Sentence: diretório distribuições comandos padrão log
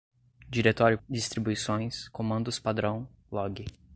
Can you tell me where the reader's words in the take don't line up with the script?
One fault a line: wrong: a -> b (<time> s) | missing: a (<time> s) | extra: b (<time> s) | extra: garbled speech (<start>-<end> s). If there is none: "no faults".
no faults